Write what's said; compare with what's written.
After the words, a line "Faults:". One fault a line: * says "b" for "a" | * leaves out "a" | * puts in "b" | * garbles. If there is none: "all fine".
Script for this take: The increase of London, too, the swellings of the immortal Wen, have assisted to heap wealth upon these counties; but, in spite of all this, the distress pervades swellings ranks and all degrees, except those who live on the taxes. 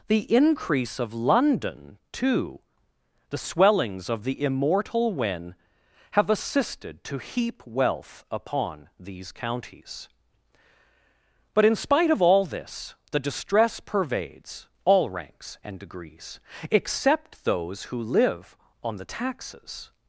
The increase of London, too, the swellings of the immortal Wen, have assisted to heap wealth upon these counties; but, in spite of all this, the distress pervades all ranks and degrees, except those who live on the taxes.
Faults:
* says "all" for "swellings"
* leaves out "all"